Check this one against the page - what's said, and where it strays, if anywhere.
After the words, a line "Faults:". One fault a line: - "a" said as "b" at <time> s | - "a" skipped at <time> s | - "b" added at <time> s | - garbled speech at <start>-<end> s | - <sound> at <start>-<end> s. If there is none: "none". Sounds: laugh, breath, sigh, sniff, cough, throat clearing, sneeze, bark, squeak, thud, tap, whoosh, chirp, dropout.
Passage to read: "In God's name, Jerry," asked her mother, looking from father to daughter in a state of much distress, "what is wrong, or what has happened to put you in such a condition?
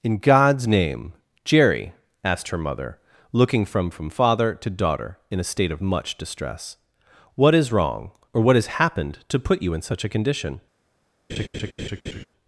"In God's name, Jerry," asked her mother, looking from from father to daughter in a state of much distress, "what is wrong, or what has happened to put you in such a condition?
Faults:
- "from" added at 3.9 s
- laugh at 11.3-12.2 s